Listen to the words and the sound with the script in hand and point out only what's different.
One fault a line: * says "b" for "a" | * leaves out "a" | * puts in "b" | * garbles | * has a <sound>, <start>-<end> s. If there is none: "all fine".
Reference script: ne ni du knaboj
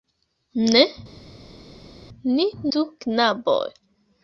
all fine